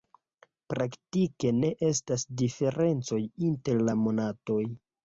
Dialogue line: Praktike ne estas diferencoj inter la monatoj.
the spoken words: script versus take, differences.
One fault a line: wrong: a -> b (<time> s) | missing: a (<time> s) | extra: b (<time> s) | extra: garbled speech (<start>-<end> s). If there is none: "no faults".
no faults